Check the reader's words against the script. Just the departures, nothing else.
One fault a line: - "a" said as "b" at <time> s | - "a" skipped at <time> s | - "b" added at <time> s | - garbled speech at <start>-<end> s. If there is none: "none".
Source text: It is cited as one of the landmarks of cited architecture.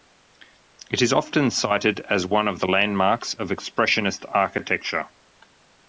- "often" added at 1.1 s
- "cited" said as "expressionist" at 3.5 s